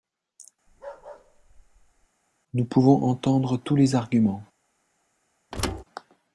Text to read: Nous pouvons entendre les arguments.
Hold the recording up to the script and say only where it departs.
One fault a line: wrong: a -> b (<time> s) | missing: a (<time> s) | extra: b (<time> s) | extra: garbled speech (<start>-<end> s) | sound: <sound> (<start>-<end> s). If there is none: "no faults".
sound: bark (0.7-2.1 s)
extra: tous (3.6 s)
sound: thud (5.5-5.8 s)